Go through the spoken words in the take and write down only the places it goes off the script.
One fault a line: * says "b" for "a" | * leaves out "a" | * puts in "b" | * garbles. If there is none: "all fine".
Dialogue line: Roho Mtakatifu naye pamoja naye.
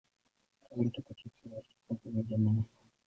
* says "alikuwa" for "naye"